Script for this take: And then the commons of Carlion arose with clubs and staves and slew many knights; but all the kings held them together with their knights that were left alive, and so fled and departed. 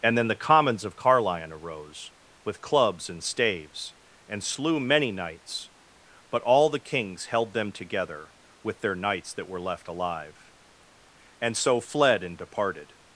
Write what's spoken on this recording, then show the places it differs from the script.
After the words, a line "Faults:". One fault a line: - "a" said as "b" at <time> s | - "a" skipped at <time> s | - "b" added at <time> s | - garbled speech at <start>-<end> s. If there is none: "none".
And then the commons of Carlion arose with clubs and staves and slew many knights; but all the kings held them together with their knights that were left alive, and so fled and departed.
Faults:
none